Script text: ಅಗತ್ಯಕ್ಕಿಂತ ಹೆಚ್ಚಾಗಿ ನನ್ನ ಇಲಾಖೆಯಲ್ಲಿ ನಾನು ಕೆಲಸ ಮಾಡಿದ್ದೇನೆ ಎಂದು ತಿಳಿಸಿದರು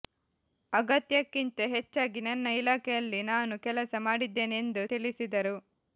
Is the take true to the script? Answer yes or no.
yes